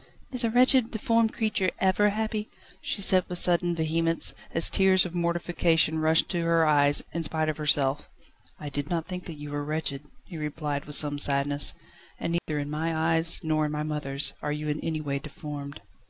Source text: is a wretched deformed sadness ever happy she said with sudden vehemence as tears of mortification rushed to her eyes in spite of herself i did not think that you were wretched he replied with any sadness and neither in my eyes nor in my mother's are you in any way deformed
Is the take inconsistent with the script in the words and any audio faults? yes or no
yes